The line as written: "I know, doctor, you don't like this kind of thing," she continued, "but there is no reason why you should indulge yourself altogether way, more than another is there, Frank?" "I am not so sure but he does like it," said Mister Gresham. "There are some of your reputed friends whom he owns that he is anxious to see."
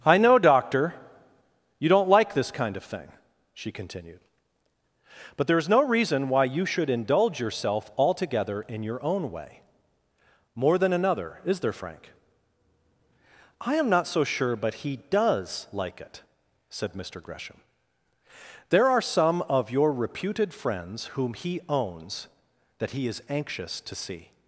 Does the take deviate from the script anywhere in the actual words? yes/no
yes